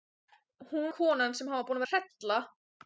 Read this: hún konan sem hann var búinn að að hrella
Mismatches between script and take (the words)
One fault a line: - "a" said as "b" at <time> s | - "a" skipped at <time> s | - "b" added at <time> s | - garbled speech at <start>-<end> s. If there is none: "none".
none